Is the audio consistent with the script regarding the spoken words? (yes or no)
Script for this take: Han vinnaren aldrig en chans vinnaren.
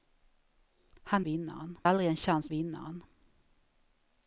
yes